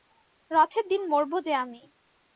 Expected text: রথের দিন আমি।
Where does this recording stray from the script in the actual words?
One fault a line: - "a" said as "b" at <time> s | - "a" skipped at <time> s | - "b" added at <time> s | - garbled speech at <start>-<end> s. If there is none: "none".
- "মরব যে" added at 1.1 s